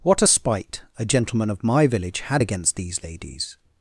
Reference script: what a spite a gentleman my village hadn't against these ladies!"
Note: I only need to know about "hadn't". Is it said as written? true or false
false